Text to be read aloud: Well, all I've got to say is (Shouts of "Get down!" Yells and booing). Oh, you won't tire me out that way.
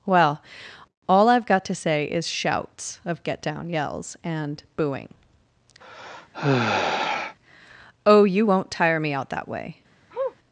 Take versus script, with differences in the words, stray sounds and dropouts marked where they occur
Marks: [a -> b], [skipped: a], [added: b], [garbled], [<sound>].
Well, all I've got to say is (Shouts of "Get down!" Yells and booing). [sigh] Oh, you won't tire me out that way. [sniff]